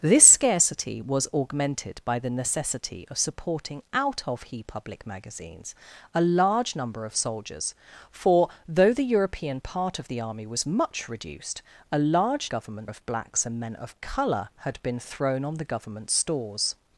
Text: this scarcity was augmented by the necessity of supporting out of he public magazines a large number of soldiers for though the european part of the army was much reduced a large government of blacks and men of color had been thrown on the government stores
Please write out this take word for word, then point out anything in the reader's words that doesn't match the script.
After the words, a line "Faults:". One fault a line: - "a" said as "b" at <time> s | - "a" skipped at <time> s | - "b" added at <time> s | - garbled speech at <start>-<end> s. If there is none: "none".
this scarcity was augmented by the necessity of supporting out of he public magazines a large number of soldiers for though the european part of the army was much reduced a large government of blacks and men of color had been thrown on the government stores
Faults:
none